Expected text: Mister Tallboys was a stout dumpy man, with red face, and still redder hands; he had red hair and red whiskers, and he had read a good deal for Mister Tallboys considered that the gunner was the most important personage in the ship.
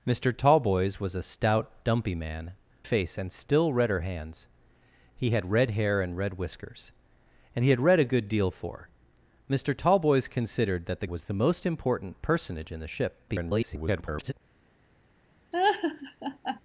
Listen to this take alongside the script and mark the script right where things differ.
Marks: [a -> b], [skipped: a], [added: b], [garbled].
Mister Tallboys was a stout dumpy man, [skipped: with red] face, and still redder hands; he had red hair and red whiskers, and he had read a good deal for Mister Tallboys considered that the [skipped: gunner] was the most important personage in the ship. [garbled]